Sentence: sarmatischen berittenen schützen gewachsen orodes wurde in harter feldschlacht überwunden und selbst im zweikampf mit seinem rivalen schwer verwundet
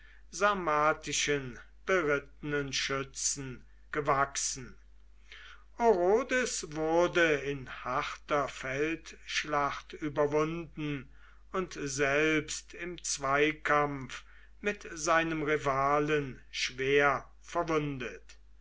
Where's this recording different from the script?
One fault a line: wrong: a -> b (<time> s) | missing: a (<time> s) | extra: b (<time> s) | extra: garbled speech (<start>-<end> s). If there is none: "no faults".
no faults